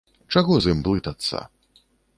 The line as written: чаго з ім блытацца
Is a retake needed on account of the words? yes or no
no